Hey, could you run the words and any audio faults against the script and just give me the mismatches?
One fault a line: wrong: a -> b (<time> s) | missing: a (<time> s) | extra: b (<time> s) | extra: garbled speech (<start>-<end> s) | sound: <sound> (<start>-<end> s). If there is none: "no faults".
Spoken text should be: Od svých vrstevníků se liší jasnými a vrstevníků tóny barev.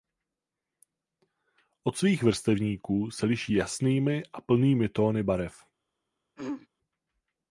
wrong: vrstevníků -> plnými (4.4 s)
sound: throat clearing (6.4-6.7 s)